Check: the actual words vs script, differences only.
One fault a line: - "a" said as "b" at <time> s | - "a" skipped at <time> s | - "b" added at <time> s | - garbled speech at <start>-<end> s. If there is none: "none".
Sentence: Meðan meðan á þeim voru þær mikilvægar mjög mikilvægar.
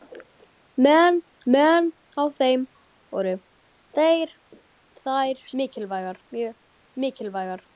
none